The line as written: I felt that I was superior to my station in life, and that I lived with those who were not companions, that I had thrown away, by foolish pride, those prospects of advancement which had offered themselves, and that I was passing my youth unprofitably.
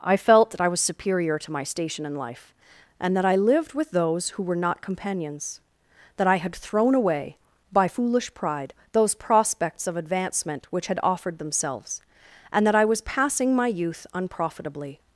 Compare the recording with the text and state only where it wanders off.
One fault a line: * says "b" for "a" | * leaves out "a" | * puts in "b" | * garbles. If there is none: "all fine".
all fine